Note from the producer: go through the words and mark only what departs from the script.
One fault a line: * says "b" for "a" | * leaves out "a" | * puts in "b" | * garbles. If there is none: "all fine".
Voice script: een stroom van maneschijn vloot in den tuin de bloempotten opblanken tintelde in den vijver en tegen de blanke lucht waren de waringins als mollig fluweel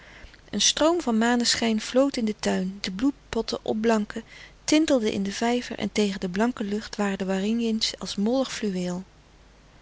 all fine